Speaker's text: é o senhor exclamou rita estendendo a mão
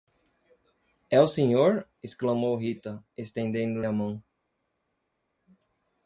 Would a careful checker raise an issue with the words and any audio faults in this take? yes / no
no